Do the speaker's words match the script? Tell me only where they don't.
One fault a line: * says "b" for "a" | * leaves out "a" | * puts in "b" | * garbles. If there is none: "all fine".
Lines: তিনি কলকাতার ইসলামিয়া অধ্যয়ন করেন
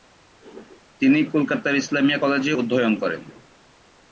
* puts in "কলেজে"